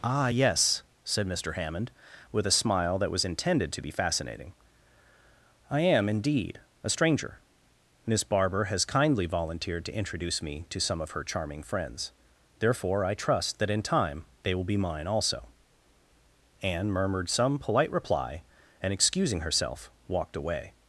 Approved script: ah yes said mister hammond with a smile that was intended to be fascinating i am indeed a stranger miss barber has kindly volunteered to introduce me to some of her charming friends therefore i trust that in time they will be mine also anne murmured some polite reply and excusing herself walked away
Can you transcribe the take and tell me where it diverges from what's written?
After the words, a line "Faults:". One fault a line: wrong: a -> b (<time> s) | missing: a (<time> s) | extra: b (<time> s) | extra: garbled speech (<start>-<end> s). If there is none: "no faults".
ah yes said mister hammond with a smile that was intended to be fascinating i am indeed a stranger miss barber has kindly volunteered to introduce me to some of her charming friends therefore i trust that in time they will be mine also anne murmured some polite reply and excusing herself walked away
Faults:
no faults